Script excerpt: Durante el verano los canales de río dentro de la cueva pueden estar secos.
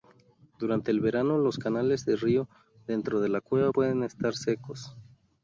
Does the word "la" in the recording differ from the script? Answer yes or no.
no